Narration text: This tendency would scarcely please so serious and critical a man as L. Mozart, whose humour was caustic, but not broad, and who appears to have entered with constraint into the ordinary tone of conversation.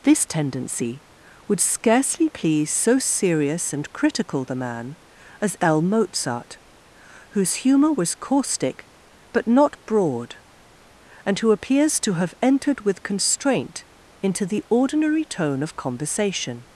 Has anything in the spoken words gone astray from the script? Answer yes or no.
yes